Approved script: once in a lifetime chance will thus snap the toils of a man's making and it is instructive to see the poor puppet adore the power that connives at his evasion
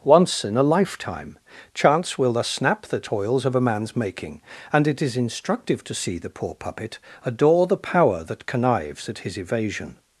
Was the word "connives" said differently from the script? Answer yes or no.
no